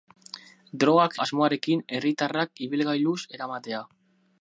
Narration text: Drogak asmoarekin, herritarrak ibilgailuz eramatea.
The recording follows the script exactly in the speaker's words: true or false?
true